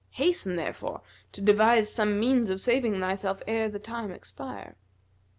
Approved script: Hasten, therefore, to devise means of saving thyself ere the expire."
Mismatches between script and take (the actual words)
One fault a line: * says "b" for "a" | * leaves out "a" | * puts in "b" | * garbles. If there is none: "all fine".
* puts in "some"
* puts in "time"